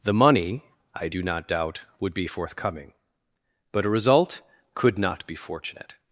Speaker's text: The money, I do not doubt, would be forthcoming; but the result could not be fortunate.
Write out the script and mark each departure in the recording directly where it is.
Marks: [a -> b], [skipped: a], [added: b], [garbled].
The money, I do not doubt, would be forthcoming; but [the -> a] result could not be fortunate.